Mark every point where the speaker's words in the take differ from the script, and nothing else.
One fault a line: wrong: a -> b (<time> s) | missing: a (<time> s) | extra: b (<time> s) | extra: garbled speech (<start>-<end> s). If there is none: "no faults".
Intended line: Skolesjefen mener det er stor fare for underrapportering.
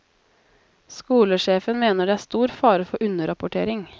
no faults